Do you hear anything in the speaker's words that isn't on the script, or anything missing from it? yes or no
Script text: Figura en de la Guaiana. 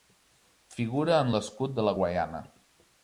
yes